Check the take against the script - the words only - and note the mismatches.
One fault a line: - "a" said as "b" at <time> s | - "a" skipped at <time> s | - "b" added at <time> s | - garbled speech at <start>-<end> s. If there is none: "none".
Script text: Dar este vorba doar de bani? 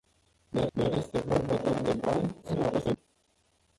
- "dar" added at 0.7 s
- garbled speech at 2.4-3.0 s